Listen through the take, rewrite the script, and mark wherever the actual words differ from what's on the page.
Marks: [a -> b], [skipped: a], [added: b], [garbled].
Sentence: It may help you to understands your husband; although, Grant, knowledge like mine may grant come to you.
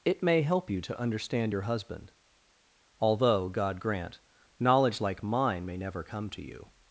It may help you to [understands -> understand] your husband; although, [added: God] Grant, knowledge like mine may [grant -> never] come to you.